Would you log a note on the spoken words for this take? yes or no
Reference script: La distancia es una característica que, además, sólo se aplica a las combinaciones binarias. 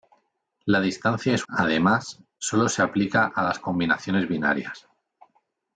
yes